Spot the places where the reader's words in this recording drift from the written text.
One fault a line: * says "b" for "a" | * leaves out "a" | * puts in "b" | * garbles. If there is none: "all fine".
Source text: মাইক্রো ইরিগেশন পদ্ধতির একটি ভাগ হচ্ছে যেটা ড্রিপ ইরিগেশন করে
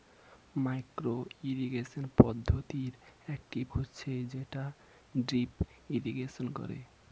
* leaves out "ভাগ"